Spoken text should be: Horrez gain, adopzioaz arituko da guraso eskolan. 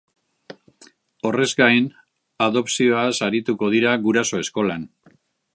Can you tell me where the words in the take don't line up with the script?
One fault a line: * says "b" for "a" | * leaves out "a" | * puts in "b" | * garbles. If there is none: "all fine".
* says "dira" for "da"